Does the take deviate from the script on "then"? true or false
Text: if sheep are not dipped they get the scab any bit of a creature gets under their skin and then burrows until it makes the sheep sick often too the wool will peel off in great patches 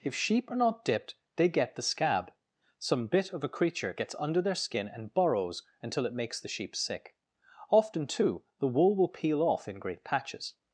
true